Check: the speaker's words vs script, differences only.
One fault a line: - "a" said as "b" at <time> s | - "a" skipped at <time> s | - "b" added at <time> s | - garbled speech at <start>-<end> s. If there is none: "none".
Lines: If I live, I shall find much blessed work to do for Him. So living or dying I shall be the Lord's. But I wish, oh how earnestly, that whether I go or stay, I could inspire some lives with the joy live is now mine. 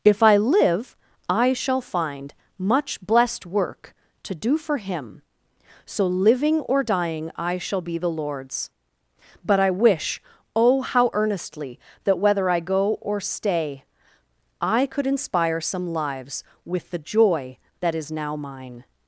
- "live" said as "that" at 17.8 s